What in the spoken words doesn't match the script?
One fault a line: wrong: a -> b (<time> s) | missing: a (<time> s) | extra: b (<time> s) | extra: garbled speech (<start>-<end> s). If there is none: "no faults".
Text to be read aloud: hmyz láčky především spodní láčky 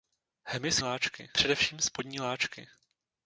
no faults